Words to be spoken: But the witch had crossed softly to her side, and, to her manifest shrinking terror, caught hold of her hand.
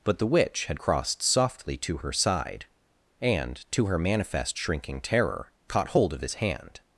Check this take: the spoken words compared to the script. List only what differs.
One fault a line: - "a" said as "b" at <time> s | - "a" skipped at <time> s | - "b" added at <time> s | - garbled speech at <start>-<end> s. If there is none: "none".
- "her" said as "his" at 6.2 s